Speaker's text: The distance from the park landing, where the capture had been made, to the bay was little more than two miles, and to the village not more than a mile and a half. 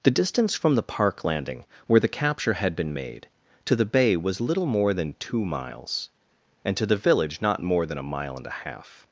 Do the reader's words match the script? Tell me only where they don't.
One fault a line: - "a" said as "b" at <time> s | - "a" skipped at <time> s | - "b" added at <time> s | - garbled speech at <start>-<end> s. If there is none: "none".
none